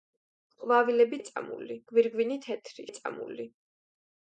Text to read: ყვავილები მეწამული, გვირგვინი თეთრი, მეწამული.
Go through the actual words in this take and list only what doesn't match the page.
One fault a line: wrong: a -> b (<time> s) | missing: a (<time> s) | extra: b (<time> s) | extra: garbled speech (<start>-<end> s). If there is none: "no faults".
no faults